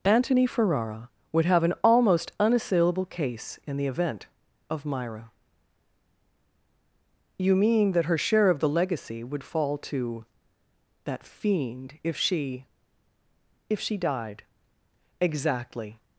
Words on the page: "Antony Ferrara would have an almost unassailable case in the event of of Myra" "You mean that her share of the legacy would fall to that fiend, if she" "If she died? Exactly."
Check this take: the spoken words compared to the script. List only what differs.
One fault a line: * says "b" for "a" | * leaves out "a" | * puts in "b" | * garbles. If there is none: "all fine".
* leaves out "of"